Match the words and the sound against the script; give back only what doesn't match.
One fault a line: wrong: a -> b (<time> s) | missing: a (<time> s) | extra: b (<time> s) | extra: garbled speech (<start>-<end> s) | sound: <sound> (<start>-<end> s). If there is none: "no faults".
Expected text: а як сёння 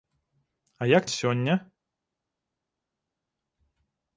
no faults